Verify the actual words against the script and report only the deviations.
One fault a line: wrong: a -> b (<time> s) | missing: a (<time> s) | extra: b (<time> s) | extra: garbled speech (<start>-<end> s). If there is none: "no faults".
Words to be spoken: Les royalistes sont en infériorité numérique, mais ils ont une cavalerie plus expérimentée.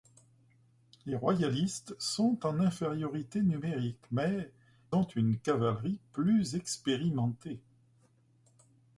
missing: ils (4.6 s)